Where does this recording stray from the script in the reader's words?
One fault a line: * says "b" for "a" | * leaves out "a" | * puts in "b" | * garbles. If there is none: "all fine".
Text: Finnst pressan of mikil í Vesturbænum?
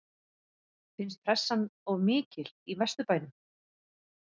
all fine